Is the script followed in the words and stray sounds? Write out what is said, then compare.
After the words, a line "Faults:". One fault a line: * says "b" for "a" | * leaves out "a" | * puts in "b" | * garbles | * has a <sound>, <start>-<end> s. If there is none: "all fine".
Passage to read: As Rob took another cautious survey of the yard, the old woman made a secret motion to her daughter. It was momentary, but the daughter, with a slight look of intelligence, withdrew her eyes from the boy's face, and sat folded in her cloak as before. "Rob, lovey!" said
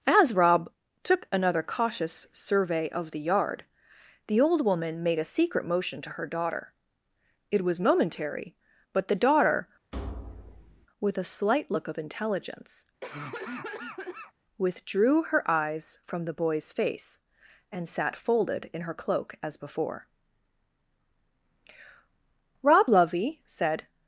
As Rob took another cautious survey of the yard, the old woman made a secret motion to her daughter. It was momentary, but the daughter, with a slight look of intelligence, withdrew her eyes from the boy's face, and sat folded in her cloak as before. "Rob, lovey!" said
Faults:
* has a thud, 9.9-10.9 s
* has a cough, 13.0-14.3 s